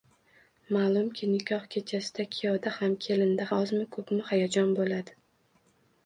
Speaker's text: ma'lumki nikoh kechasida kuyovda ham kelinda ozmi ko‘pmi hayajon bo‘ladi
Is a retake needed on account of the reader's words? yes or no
no